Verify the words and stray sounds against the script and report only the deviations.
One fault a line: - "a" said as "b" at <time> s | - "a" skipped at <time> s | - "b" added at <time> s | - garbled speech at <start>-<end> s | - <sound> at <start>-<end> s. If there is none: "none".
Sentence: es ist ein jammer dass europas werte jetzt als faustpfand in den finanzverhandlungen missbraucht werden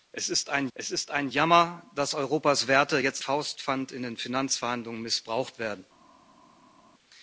- "es ist ein" added at 0.8 s
- "als" skipped at 3.2 s